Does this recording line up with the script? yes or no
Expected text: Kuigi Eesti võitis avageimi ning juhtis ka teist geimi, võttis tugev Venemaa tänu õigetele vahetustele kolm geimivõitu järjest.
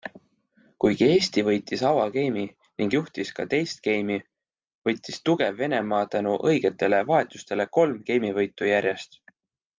yes